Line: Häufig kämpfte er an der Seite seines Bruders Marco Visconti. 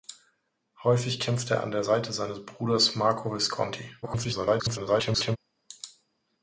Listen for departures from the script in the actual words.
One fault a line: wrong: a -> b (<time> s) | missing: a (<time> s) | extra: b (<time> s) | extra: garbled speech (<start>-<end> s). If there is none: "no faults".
extra: garbled speech (4.0-5.4 s)